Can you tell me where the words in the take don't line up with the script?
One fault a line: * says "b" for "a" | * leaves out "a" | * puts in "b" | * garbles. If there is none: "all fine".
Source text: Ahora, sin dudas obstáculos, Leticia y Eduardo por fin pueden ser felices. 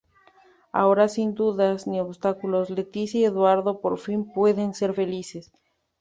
* puts in "ni"